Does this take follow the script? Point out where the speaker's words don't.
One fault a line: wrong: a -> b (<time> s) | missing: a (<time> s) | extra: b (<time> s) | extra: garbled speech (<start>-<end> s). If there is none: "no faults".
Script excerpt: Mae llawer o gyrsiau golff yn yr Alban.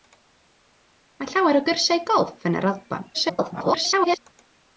extra: garbled speech (3.1-4.2 s)